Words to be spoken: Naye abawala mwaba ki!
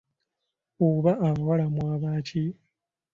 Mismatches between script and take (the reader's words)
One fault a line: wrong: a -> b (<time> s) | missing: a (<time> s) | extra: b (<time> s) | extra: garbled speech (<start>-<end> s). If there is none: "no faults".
wrong: Naye -> Oba (0.9 s)